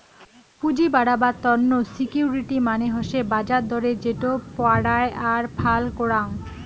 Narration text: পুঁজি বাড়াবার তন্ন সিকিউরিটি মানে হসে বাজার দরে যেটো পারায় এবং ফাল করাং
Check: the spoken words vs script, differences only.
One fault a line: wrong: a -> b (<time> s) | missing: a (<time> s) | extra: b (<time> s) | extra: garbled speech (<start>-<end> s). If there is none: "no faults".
wrong: এবং -> আর (5.3 s)